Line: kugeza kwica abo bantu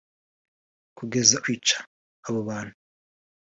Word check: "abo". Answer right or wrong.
right